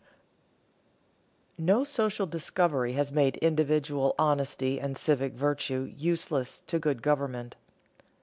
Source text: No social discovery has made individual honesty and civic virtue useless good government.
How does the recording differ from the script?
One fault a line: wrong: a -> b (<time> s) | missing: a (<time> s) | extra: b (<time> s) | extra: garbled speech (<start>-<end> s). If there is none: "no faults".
extra: to (6.7 s)